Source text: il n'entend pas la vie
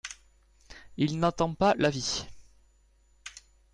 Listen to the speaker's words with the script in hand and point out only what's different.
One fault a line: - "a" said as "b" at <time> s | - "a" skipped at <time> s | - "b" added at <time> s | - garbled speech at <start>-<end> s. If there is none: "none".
none